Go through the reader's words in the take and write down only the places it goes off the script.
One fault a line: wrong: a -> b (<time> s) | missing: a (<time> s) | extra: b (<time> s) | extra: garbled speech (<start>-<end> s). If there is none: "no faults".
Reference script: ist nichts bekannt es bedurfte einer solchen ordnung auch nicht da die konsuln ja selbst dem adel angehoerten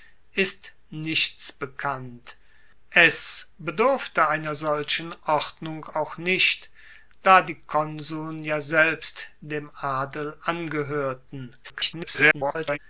extra: garbled speech (11.6-12.8 s)